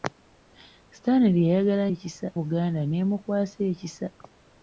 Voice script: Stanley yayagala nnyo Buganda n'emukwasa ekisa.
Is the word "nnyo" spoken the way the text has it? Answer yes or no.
no